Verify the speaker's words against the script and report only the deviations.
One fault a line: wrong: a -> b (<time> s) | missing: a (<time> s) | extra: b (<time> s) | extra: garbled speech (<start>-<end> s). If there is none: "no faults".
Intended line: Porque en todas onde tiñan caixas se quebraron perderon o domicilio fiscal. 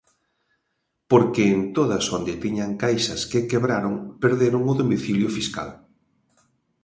wrong: se -> que (3.3 s)